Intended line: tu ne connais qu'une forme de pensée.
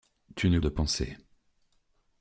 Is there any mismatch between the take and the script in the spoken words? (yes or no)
yes